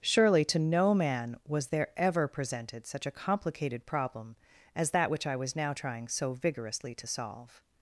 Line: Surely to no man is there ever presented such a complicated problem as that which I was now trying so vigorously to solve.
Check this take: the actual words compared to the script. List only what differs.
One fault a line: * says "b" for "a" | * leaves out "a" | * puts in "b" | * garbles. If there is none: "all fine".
* says "was" for "is"